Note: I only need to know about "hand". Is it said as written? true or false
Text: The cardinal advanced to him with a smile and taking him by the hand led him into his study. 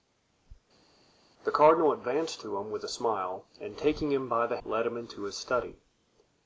false